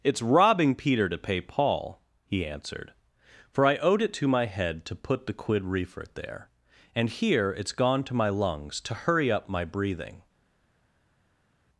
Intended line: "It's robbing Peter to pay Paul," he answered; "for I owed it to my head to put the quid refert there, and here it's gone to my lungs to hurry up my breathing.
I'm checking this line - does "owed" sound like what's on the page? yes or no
yes